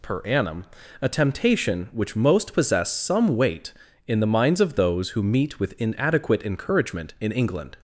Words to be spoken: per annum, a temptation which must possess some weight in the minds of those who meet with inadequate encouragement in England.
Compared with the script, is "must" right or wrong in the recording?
wrong